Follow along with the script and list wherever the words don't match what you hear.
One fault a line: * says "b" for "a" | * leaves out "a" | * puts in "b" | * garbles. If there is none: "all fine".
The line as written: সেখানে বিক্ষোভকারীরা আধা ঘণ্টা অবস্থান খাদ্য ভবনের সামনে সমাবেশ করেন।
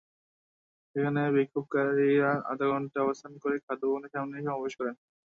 * puts in "করে"